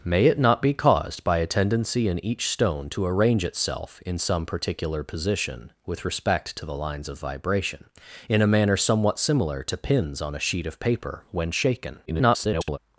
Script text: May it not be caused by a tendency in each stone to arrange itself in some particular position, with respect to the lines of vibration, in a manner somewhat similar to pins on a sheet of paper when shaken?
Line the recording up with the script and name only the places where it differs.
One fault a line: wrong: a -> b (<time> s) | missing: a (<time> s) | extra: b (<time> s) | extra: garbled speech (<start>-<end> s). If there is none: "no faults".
extra: garbled speech (12.1-12.8 s)